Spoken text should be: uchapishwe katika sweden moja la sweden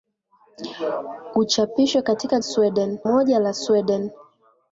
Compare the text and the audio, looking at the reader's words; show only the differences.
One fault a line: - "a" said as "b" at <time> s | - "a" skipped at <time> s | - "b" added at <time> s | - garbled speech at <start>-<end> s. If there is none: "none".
none